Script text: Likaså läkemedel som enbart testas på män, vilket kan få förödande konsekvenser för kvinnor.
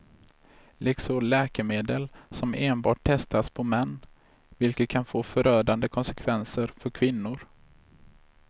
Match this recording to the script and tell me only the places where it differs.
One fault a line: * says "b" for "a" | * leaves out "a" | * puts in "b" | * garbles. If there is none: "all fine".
all fine